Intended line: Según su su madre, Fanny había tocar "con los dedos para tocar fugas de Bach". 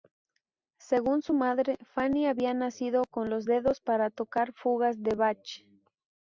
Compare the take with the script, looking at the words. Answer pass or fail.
fail